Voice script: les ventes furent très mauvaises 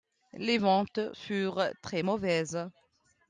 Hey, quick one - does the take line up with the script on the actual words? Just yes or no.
yes